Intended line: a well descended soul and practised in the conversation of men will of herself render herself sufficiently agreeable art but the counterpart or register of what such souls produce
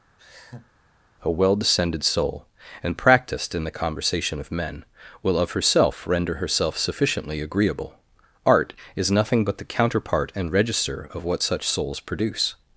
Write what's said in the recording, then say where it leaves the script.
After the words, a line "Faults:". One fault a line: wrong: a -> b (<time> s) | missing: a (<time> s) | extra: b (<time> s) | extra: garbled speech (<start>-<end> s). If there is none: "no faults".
a well descended soul and practised in the conversation of men will of herself render herself sufficiently agreeable art is nothing but the counterpart and register of what such souls produce
Faults:
extra: is nothing (9.0 s)
wrong: or -> and (10.3 s)